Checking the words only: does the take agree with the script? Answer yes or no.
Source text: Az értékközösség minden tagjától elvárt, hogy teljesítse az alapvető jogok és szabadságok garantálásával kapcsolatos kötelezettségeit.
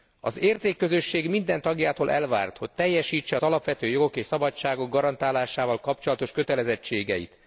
yes